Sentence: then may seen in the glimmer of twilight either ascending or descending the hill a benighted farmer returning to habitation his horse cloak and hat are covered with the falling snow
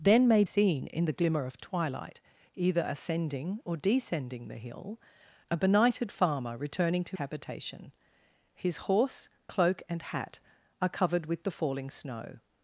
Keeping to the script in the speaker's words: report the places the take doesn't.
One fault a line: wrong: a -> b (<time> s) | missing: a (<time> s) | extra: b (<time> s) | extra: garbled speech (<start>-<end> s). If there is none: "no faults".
no faults